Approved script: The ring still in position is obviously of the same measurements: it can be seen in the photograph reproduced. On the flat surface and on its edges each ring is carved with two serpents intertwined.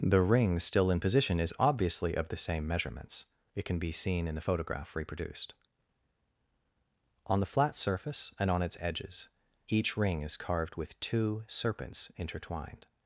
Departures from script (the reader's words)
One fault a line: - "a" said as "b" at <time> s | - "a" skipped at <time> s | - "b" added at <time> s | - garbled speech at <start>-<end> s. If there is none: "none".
none